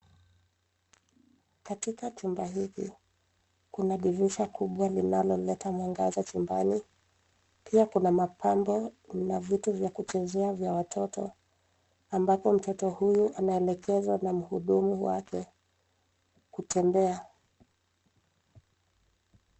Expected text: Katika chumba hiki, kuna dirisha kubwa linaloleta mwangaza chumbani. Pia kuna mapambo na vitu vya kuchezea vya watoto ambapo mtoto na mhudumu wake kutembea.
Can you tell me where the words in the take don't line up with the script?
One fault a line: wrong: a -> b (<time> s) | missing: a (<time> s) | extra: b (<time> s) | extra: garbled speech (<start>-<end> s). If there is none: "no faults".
extra: huyu anaelekezwa (12.9 s)